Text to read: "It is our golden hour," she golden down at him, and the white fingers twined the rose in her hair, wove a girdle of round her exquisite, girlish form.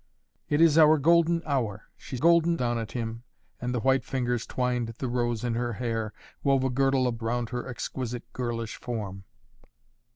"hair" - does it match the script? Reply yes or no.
yes